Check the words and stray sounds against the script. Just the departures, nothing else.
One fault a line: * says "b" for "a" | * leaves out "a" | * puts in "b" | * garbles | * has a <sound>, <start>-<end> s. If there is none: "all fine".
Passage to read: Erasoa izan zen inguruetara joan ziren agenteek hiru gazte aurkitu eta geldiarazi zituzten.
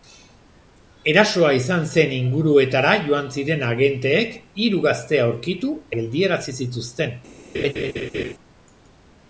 * leaves out "eta"
* has a laugh, 7.5-8.3 s